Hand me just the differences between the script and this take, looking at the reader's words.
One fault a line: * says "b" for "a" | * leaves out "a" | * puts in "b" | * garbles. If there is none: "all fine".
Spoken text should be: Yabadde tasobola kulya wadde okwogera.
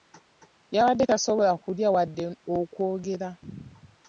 all fine